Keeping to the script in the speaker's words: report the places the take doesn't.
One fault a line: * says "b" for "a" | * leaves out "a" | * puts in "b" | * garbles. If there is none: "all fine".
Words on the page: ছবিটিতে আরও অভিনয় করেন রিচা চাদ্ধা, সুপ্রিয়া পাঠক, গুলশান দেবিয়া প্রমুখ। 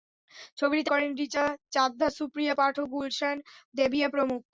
* leaves out "আরও অভিনয়"